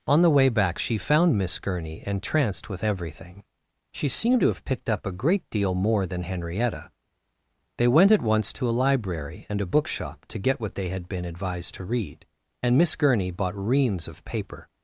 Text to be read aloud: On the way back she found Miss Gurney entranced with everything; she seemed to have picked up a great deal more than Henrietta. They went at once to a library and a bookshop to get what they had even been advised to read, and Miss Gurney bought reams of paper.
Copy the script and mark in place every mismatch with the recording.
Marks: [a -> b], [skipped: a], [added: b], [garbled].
On the way back she found Miss Gurney entranced with everything; she seemed to have picked up a great deal more than Henrietta. They went at once to a library and a bookshop to get what they had [skipped: even] been advised to read, and Miss Gurney bought reams of paper.